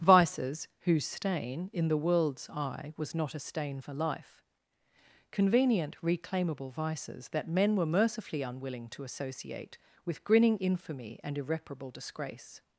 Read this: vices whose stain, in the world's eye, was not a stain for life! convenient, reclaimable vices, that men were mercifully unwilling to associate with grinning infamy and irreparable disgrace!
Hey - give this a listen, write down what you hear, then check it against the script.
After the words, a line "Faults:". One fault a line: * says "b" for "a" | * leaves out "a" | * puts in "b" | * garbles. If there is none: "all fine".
vices whose stain, in the world's eye, was not a stain for life! convenient, reclaimable vices, that men were mercifully unwilling to associate with grinning infamy and irreparable disgrace!
Faults:
all fine